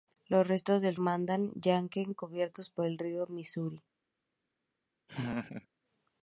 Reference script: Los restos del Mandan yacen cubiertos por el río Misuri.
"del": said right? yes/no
yes